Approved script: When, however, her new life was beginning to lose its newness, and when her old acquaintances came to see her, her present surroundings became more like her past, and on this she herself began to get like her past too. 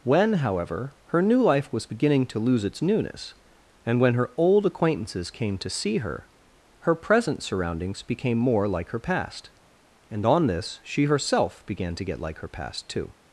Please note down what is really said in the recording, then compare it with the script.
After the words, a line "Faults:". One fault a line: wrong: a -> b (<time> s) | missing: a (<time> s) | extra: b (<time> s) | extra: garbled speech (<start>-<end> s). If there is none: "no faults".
When, however, her new life was beginning to lose its newness, and when her old acquaintances came to see her, her present surroundings became more like her past, and on this she herself began to get like her past too.
Faults:
no faults